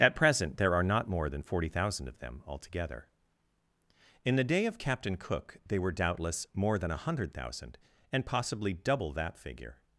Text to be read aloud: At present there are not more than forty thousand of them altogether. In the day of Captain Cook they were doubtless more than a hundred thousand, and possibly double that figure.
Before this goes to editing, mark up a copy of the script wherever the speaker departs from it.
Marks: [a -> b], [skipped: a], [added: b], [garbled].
At present there are not more than forty thousand of them altogether. In the day of Captain Cook they were doubtless more than a hundred thousand, and possibly double that figure.